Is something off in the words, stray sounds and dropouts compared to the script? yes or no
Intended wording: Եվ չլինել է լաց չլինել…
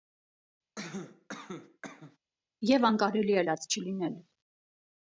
yes